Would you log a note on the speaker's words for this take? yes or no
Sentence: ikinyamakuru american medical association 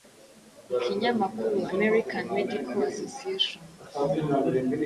no